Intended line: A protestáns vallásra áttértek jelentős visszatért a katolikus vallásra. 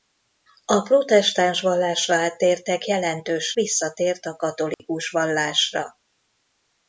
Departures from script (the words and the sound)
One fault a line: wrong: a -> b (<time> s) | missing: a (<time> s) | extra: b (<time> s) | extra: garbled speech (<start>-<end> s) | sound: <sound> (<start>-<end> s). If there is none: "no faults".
sound: dropout (4.7-4.8 s)